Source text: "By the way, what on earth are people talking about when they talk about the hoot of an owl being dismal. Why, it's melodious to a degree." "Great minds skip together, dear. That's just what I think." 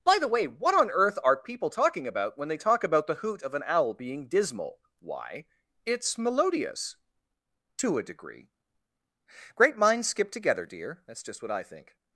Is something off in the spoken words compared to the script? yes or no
no